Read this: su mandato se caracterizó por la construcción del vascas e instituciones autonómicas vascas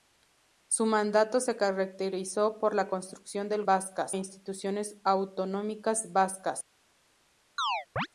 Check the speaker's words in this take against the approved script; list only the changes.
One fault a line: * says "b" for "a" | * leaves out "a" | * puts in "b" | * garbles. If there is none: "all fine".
all fine